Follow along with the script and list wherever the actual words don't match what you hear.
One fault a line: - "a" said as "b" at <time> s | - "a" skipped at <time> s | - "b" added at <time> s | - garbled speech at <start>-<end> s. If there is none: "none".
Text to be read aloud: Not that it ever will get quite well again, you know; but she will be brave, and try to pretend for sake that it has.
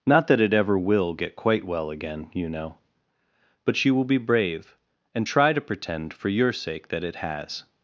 - "your" added at 6.3 s